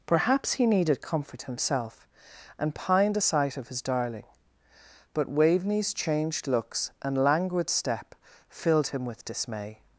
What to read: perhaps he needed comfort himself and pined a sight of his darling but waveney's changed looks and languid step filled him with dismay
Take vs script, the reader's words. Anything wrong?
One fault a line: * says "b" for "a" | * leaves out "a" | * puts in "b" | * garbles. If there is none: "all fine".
all fine